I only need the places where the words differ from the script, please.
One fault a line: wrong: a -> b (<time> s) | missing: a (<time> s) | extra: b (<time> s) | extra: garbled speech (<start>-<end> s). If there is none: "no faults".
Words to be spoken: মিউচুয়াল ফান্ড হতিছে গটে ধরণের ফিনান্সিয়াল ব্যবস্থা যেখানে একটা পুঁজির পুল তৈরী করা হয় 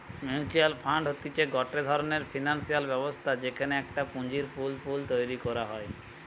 extra: পুল (4.8 s)